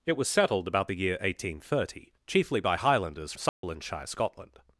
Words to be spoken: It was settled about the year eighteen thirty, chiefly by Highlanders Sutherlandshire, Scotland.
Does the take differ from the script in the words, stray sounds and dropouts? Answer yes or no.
yes